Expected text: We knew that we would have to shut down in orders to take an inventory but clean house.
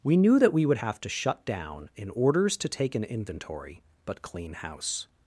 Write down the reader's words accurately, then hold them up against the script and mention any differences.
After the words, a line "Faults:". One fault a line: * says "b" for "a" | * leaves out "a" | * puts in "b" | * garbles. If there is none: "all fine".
We knew that we would have to shut down in orders to take an inventory but clean house.
Faults:
all fine